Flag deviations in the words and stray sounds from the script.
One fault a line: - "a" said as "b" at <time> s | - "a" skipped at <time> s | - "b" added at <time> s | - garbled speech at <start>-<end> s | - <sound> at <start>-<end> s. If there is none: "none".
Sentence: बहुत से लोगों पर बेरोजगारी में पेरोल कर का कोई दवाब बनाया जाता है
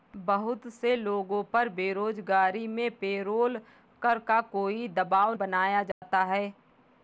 - dropout at 5.9-6.0 s